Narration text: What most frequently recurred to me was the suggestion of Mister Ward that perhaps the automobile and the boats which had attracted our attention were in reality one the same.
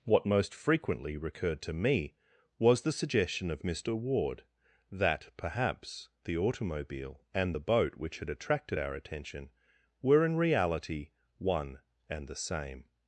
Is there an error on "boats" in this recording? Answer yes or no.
yes